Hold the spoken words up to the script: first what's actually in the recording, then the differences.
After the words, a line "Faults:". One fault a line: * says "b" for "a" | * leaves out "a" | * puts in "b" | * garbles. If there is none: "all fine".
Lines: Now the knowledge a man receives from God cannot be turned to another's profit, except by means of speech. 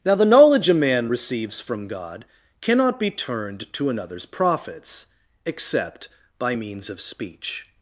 Now the knowledge a man receives from God cannot be turned to another's profits, except by means of speech.
Faults:
* says "profits" for "profit"